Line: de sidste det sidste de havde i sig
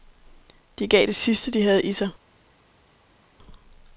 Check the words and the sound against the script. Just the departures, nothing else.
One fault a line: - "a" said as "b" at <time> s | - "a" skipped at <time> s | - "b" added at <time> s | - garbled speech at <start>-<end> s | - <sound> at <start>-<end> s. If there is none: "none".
- "sidste" said as "gav" at 0.9 s